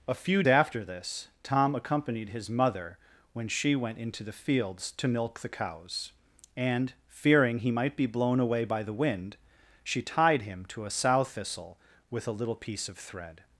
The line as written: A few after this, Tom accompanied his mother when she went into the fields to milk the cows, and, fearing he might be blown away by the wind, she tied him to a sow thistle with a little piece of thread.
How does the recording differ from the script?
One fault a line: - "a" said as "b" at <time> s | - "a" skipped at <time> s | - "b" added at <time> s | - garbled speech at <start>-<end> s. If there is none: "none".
none